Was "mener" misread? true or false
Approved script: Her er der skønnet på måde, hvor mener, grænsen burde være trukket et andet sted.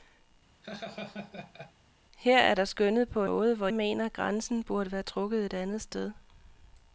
false